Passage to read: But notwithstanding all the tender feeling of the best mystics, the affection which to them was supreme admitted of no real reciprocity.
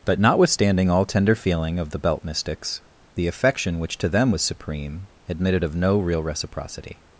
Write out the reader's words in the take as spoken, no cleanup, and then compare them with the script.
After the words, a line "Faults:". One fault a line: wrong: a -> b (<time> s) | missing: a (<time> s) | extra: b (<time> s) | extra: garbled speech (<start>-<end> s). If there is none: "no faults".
But notwithstanding all tender feeling of the belt mystics, the affection which to them was supreme admitted of no real reciprocity.
Faults:
missing: the (1.0 s)
wrong: best -> belt (2.0 s)